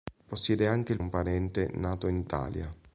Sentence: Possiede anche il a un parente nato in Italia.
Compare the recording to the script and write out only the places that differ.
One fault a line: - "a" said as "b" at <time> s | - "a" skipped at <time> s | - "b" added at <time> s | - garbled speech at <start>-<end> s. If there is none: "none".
none